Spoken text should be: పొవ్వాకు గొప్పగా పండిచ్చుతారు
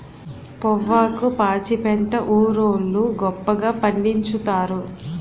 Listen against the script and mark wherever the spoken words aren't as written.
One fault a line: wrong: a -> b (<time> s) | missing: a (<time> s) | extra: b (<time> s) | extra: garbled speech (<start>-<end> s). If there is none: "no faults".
extra: పాచిపెంట ఊరోళ్లు (1.4 s)